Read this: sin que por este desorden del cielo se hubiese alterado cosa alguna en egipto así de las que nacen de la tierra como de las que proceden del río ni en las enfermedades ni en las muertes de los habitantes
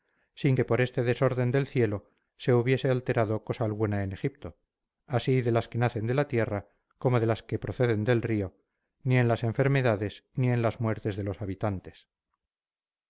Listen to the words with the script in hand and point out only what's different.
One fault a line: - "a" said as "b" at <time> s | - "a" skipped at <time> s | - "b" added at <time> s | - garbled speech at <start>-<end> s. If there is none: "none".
none